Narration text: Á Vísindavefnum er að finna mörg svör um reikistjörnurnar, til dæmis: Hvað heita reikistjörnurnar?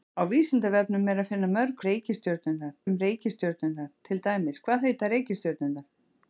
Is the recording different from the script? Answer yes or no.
yes